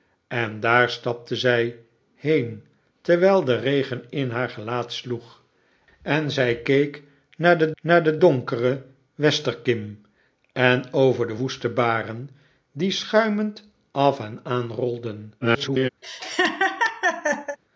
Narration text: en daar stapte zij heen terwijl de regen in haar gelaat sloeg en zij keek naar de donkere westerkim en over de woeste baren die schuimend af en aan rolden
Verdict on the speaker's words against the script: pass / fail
fail